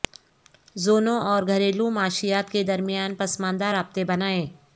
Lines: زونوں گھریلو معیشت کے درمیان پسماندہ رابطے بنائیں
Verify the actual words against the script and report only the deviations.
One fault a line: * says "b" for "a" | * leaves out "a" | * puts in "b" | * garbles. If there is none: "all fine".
* puts in "اور"